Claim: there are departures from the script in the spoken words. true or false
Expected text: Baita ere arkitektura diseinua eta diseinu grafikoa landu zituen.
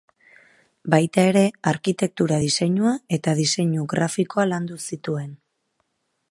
false